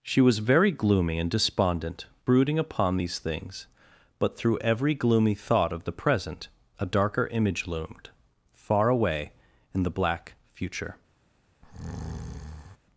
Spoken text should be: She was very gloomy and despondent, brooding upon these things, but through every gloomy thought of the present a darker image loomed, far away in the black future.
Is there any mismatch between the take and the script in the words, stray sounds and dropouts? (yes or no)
yes